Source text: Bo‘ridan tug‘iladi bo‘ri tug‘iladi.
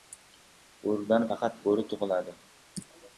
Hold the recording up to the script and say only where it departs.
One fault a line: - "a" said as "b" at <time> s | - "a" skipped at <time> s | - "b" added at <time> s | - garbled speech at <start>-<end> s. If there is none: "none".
- "tug‘iladi" said as "faqat" at 1.3 s